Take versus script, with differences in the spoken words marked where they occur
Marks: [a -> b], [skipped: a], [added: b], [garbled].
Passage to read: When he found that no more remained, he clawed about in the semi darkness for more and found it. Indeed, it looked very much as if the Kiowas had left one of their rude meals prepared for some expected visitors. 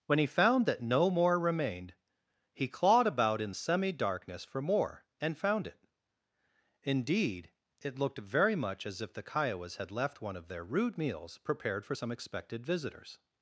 When he found that no more remained, he clawed about in [skipped: the] semi darkness for more and found it. Indeed, it looked very much as if the Kiowas had left one of their rude meals prepared for some expected visitors.